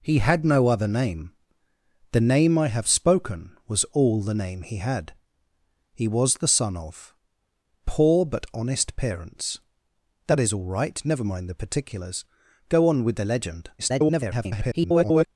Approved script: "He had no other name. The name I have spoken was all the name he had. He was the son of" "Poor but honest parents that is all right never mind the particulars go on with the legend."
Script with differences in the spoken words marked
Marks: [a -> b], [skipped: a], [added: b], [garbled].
"He had no other name. The name I have spoken was all the name he had. He was the son of" "Poor but honest parents that is all right never mind the particulars go on with the legend." [garbled]